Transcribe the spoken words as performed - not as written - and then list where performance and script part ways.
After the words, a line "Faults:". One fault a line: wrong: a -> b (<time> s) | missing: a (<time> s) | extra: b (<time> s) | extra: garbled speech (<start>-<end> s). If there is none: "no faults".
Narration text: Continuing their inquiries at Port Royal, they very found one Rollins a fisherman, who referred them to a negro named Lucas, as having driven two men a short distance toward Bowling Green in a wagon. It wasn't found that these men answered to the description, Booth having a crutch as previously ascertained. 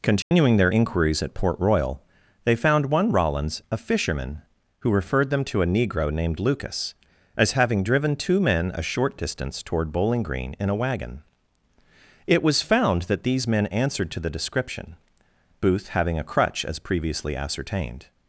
Continuing their inquiries at Port Royal, they found one Rollins a fisherman, who referred them to a negro named Lucas, as having driven two men a short distance toward Bowling Green in a wagon. It was found that these men answered to the description, Booth having a crutch as previously ascertained.
Faults:
missing: very (2.6 s)
wrong: wasn't -> was (12.4 s)